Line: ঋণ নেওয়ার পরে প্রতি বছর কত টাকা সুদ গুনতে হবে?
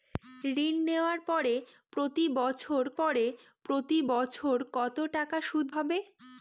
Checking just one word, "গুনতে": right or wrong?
wrong